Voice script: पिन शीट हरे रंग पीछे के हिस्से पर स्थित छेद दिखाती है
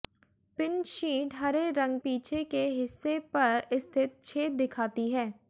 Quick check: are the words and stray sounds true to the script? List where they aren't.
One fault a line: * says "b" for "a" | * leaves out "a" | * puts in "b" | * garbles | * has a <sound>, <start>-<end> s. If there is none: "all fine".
all fine